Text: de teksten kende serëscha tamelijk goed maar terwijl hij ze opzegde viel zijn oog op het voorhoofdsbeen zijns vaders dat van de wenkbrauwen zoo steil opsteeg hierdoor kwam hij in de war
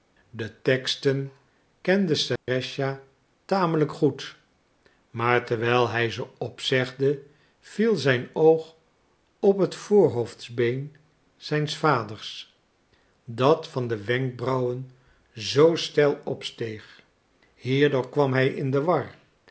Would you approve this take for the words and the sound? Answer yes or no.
no